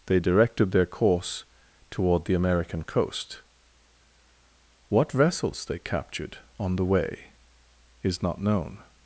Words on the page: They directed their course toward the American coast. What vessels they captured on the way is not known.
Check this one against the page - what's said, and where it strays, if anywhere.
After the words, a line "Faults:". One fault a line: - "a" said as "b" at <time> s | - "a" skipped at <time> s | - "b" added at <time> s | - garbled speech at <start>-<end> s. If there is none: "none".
They directed their course toward the American coast. What vessels they captured on the way is not known.
Faults:
none